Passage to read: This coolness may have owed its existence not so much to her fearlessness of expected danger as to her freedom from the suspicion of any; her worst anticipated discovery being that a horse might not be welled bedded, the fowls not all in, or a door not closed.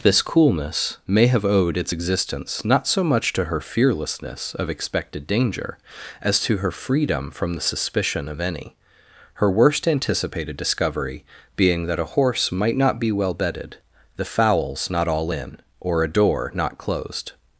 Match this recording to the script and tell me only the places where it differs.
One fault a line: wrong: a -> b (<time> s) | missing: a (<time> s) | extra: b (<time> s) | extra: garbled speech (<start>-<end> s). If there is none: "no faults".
wrong: welled -> well (13.1 s)